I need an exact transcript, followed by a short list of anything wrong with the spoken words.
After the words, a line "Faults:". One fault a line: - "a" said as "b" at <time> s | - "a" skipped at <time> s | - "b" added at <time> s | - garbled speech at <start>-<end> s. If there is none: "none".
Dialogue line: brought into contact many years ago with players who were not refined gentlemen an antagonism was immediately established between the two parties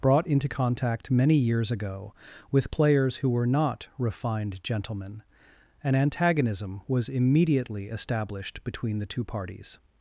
brought into contact many years ago with players who were not refined gentlemen an antagonism was immediately established between the two parties
Faults:
none